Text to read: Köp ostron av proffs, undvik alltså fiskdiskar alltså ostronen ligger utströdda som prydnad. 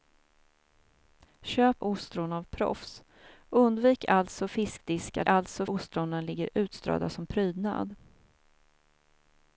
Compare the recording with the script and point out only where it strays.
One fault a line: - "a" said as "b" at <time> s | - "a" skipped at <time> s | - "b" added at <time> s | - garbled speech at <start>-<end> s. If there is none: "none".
none